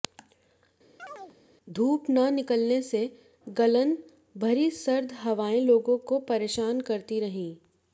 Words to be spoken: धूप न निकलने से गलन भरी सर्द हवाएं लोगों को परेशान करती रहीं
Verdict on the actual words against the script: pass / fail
pass